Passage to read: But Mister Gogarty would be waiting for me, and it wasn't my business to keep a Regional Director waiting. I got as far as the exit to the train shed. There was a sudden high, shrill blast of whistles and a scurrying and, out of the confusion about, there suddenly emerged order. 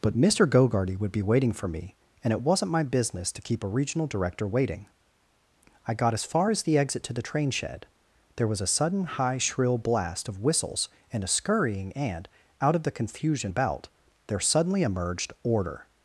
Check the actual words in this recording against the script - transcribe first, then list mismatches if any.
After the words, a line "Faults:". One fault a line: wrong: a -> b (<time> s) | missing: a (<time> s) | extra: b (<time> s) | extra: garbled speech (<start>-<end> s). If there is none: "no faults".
But Mister Gogarty would be waiting for me, and it wasn't my business to keep a Regional Director waiting. I got as far as the exit to the train shed. There was a sudden high, shrill blast of whistles and a scurrying and, out of the confusion about, there suddenly emerged order.
Faults:
no faults